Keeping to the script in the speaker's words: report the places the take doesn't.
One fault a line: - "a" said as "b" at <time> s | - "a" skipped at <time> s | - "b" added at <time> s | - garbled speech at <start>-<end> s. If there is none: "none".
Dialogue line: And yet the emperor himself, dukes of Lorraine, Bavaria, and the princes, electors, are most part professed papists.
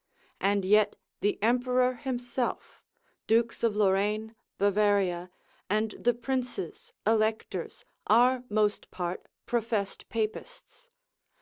none